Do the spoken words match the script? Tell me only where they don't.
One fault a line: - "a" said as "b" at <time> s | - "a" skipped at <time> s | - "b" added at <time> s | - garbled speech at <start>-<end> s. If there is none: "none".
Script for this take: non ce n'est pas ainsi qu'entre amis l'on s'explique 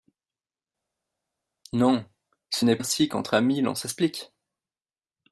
- "pas" skipped at 2.8 s